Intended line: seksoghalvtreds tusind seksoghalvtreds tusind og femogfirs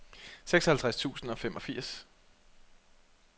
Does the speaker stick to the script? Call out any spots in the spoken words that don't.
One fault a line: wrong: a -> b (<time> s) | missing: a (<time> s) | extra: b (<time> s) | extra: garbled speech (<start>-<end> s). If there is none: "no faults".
missing: seksoghalvtreds tusind (1.3 s)